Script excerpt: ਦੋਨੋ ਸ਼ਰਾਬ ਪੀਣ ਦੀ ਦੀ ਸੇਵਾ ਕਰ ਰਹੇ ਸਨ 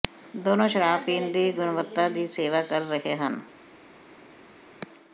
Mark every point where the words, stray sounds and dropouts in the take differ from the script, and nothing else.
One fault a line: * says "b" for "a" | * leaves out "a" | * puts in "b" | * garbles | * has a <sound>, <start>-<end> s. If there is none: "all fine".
* puts in "ਗੁਣਵੱਤਾ"
* says "ਹਨ" for "ਸਨ"